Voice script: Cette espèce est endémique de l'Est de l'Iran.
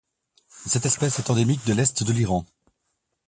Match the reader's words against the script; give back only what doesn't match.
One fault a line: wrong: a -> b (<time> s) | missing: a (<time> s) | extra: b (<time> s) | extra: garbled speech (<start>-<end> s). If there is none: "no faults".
no faults